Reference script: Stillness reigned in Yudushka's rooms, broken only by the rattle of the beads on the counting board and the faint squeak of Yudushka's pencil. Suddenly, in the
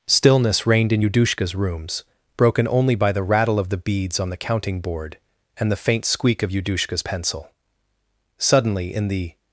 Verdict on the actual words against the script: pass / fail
pass